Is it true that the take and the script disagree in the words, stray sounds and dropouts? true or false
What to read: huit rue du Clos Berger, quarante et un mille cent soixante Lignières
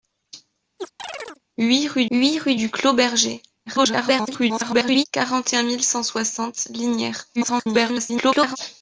true